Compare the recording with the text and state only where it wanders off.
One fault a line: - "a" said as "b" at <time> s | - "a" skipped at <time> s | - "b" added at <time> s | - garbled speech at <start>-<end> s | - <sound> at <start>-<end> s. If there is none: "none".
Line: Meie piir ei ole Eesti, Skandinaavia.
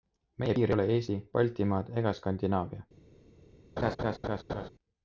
- "Baltimaad ega" added at 1.4 s
- laugh at 3.8-4.7 s